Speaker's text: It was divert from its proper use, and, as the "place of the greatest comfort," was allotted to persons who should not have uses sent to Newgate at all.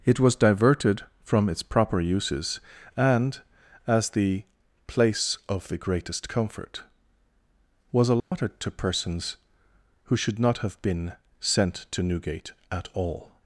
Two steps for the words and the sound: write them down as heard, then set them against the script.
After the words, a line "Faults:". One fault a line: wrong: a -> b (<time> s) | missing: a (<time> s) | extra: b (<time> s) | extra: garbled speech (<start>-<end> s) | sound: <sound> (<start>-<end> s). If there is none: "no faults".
It was diverted from its proper uses, and, as the "place of the greatest comfort," was allotted to persons who should not have been sent to Newgate at all.
Faults:
wrong: divert -> diverted (0.3 s)
wrong: use -> uses (2.0 s)
sound: dropout (8.2-8.3 s)
wrong: uses -> been (10.8 s)